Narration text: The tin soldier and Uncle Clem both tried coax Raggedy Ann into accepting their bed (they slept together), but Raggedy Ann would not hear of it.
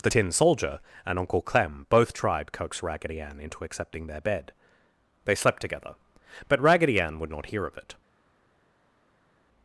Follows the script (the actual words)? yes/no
yes